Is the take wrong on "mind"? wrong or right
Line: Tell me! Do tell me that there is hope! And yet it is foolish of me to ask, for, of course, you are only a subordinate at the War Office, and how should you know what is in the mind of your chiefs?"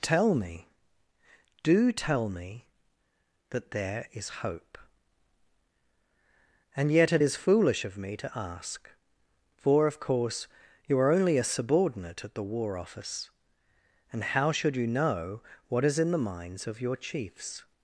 wrong